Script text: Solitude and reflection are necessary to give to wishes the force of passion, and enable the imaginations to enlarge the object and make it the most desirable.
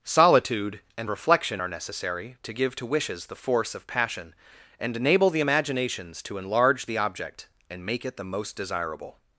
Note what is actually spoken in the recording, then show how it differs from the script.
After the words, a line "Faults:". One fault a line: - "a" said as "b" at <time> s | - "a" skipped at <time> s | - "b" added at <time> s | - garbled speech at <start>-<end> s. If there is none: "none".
Solitude and reflection are necessary to give to wishes the force of passion, and enable the imaginations to enlarge the object and make it the most desirable.
Faults:
none